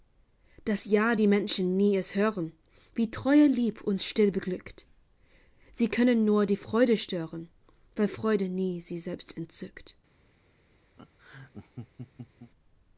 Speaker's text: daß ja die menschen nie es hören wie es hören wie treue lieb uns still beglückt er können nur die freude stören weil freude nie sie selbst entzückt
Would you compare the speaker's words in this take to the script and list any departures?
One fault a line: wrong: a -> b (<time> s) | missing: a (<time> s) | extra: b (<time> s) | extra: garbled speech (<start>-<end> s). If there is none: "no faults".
missing: es hören wie (3.1 s)
wrong: er -> sie (5.7 s)